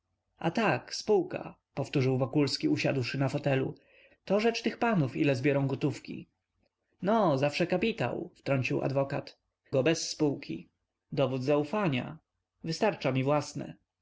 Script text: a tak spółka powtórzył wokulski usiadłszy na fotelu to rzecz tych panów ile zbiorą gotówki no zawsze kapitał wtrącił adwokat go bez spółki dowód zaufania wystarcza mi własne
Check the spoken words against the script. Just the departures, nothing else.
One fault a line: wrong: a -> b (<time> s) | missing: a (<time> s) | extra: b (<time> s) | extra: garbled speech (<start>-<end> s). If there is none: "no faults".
no faults